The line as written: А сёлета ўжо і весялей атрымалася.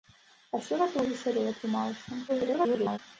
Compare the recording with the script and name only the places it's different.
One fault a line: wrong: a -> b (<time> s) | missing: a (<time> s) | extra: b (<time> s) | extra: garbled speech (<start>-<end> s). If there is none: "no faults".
missing: ўжо (1.0 s)
extra: garbled speech (2.3-3.0 s)